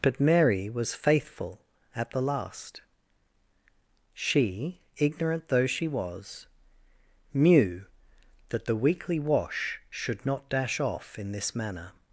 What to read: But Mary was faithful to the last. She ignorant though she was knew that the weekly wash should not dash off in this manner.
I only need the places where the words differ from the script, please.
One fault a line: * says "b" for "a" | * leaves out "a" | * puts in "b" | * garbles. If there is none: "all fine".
* says "at" for "to"